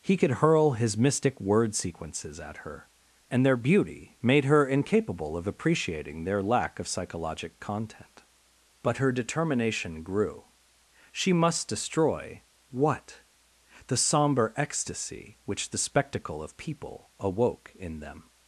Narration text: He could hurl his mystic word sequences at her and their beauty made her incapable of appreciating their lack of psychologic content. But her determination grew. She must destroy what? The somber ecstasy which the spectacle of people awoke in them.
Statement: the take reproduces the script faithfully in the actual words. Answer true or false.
true